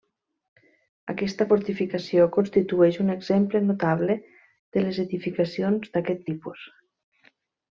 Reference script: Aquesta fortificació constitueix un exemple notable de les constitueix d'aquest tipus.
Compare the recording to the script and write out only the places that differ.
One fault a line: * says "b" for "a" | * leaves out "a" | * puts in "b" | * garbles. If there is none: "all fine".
* says "edificacions" for "constitueix"